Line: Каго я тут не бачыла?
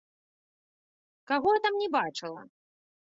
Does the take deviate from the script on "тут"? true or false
true